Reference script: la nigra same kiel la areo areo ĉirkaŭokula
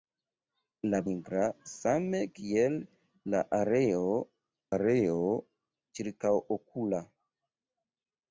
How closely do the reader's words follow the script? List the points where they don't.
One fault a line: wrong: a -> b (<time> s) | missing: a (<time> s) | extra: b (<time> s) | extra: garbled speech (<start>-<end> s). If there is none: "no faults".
no faults